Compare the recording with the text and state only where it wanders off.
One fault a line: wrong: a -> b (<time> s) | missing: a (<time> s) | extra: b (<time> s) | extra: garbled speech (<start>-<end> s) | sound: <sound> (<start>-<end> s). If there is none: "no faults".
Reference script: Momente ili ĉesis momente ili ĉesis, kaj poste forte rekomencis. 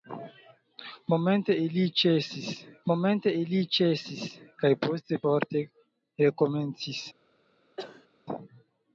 sound: cough (7.8-8.1 s)